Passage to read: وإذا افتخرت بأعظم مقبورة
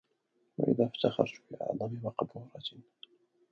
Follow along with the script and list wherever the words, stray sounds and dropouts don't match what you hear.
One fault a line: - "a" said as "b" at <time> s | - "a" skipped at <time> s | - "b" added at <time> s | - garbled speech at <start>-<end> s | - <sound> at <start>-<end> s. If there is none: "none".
none